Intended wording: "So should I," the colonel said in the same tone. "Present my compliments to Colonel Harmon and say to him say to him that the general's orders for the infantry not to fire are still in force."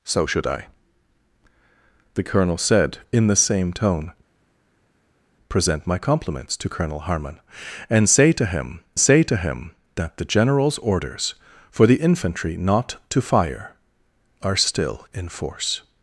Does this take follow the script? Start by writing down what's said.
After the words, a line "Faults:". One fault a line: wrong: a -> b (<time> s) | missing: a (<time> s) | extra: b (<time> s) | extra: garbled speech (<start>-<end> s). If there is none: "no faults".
"So should I," the colonel said in the same tone. "Present my compliments to Colonel Harmon and say to him say to him that the general's orders for the infantry not to fire are still in force."
Faults:
no faults